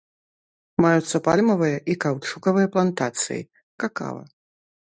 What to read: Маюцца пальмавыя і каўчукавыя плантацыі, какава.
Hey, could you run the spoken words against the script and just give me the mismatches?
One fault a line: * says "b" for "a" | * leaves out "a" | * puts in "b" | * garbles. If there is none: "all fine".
all fine